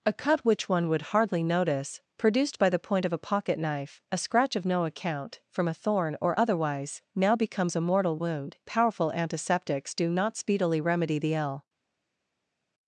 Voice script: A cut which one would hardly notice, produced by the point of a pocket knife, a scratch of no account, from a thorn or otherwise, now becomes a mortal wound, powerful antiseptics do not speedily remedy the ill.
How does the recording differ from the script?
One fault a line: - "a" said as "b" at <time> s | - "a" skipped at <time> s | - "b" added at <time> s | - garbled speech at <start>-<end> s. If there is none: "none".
none